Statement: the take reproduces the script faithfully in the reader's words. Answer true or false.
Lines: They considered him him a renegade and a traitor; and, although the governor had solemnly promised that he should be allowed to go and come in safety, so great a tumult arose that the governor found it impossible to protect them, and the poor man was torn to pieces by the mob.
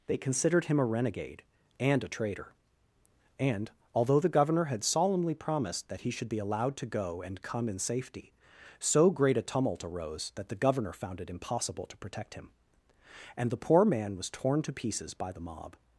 false